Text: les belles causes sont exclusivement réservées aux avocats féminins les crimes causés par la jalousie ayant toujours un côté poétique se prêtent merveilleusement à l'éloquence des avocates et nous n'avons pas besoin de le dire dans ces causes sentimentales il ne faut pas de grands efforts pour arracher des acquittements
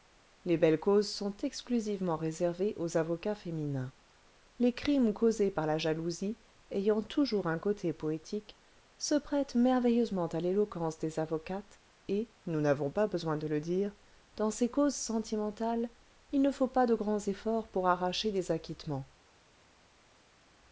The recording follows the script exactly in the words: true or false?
true